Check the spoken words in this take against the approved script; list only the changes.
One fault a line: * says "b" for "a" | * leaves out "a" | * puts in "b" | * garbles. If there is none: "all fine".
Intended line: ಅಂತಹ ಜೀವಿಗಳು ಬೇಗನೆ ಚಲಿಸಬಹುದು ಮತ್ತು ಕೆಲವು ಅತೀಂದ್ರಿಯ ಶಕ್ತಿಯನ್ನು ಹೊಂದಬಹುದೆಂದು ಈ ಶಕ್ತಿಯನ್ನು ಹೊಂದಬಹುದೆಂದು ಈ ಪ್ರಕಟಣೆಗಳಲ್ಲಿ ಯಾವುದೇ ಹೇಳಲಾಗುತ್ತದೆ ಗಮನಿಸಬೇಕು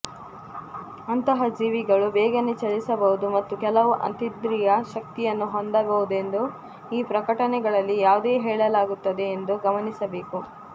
* leaves out "ಶಕ್ತಿಯನ್ನು ಹೊಂದಬಹುದೆಂದು ಈ"
* puts in "ಎಂದು"